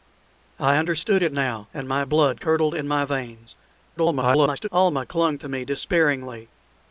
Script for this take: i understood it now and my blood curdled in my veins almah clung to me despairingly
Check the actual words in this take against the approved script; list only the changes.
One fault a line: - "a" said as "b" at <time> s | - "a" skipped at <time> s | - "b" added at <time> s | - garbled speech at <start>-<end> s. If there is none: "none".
- garbled speech at 4.0-4.7 s